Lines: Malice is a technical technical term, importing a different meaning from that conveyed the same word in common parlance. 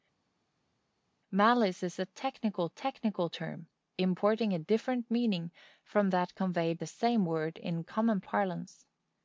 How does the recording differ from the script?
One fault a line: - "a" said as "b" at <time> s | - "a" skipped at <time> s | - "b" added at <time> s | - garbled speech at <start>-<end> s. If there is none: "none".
none